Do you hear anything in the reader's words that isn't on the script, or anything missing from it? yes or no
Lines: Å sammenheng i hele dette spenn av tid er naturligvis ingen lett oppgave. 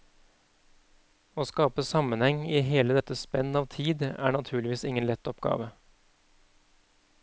yes